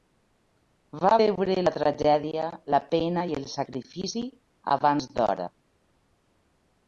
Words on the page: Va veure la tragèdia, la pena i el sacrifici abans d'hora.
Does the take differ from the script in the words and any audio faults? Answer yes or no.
no